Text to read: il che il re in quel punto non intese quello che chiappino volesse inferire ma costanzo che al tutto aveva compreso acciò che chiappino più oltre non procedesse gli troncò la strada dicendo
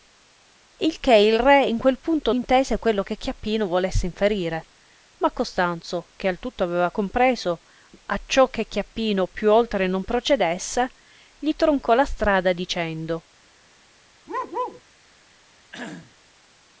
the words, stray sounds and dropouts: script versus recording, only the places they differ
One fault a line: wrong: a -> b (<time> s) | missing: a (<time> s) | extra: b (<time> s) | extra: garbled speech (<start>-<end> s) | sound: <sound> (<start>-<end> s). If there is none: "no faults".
missing: non (2.3 s)
sound: bark (14.3-14.8 s)
sound: cough (15.7-16.2 s)